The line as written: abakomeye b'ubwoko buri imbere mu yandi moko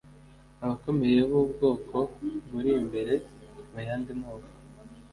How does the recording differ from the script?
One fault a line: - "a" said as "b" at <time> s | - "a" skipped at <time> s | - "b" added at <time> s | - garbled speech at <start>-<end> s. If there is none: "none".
none